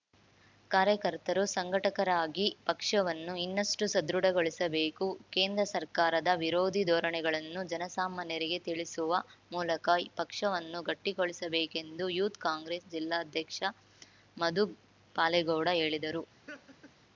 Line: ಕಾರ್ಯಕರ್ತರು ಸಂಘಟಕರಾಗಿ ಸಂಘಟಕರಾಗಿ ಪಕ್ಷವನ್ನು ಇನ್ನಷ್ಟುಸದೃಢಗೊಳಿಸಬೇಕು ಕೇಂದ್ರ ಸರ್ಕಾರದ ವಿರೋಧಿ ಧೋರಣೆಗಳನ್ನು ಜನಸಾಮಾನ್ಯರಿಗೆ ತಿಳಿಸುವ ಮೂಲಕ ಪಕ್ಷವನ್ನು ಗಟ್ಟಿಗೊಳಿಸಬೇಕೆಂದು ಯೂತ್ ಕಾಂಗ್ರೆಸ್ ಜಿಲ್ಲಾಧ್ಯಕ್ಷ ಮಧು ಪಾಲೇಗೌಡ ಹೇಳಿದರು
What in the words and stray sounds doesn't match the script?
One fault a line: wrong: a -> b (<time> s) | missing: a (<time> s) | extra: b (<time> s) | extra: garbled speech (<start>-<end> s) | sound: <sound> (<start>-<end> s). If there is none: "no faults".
missing: ಸಂಘಟಕರಾಗಿ (2.5 s)
sound: laugh (16.5-16.9 s)